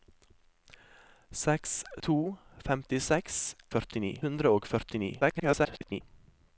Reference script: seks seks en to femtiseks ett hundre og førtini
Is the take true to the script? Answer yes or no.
no